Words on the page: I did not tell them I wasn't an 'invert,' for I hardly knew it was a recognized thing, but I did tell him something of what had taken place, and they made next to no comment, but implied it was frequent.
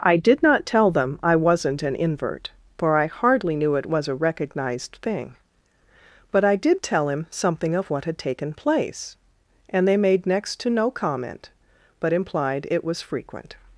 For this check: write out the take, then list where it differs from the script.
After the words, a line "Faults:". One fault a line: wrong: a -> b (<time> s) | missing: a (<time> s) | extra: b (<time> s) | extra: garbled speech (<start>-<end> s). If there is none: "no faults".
I did not tell them I wasn't an 'invert,' for I hardly knew it was a recognized thing, but I did tell him something of what had taken place, and they made next to no comment, but implied it was frequent.
Faults:
no faults